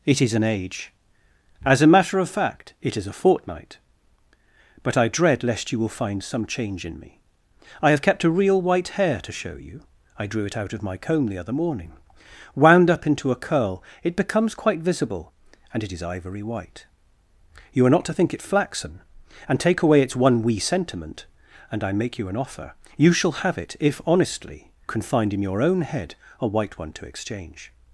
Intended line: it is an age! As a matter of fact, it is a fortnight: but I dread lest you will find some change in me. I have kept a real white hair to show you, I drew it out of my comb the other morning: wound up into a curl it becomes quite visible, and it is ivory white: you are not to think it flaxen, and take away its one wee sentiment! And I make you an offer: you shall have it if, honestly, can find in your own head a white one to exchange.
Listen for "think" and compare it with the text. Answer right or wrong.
right